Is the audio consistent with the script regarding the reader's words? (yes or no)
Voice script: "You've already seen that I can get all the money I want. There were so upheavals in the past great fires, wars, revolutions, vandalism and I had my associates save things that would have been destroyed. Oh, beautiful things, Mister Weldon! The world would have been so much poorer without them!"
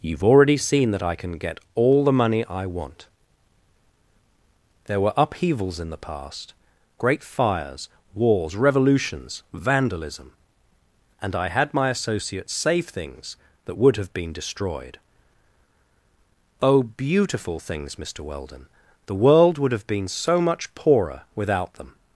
no